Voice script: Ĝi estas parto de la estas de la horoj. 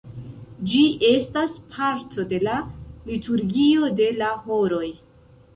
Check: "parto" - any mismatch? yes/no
no